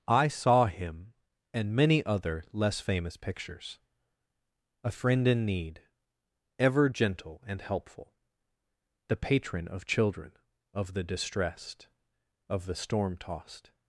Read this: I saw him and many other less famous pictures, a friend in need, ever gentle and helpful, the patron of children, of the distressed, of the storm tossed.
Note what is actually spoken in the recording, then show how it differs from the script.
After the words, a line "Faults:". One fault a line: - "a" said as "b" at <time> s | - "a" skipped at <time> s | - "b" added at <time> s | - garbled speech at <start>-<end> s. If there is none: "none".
I saw him and many other less famous pictures, a friend in need, ever gentle and helpful, the patron of children, of the distressed, of the storm tossed.
Faults:
none